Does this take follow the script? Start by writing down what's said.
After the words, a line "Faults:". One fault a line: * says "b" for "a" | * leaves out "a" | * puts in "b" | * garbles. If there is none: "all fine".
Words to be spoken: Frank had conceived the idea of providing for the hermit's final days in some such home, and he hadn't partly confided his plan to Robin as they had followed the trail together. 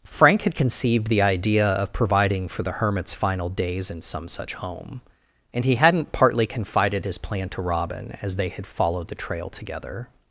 Frank had conceived the idea of providing for the hermit's final days in some such home, and he hadn't partly confided his plan to Robin as they had followed the trail together.
Faults:
all fine